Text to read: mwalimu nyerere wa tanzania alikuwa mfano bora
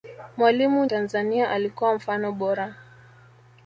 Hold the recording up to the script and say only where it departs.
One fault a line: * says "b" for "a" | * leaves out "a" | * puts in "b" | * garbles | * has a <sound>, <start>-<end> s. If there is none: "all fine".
* leaves out "nyerere wa"